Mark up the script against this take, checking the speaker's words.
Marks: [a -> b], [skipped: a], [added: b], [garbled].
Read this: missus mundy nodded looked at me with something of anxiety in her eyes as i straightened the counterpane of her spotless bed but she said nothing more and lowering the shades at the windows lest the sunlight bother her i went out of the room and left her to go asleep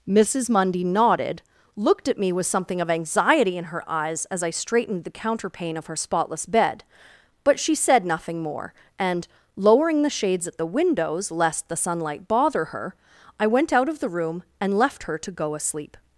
missus mundy nodded looked at me with something of anxiety in her eyes as i straightened the counterpane of her spotless bed but she said nothing more and lowering the shades at the windows lest the sunlight bother her i went out of the room and left her to go asleep